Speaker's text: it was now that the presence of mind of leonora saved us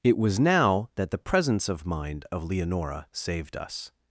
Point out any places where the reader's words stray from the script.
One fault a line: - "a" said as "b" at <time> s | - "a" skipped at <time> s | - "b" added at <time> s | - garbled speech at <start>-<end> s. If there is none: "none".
none